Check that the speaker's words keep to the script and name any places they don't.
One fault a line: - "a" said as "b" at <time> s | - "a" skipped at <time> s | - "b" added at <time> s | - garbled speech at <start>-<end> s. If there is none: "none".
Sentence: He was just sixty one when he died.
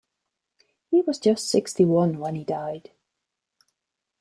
none